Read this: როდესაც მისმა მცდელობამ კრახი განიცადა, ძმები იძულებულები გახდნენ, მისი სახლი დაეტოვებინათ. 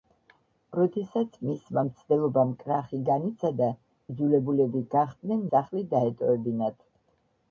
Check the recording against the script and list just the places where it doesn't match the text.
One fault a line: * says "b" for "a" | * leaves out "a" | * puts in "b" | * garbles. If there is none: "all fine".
* leaves out "ძმები"
* leaves out "მისი"